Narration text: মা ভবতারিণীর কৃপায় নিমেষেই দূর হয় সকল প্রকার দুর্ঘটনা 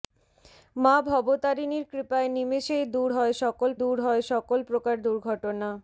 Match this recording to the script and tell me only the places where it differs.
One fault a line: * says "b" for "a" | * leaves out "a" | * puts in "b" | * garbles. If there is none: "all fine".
* puts in "দূর হয় সকল"